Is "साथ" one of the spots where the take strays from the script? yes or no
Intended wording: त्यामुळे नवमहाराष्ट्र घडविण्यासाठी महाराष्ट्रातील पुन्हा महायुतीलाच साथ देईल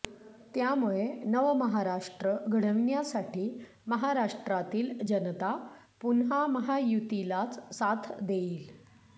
no